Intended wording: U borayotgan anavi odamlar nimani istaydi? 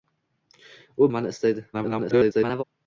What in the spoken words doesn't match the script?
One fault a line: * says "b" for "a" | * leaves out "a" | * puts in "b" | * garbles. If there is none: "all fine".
* leaves out "borayotgan anavi odamlar"
* garbles